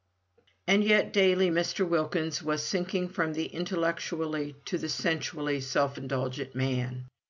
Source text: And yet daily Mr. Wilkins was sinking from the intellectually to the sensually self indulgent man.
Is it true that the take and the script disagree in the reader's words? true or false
false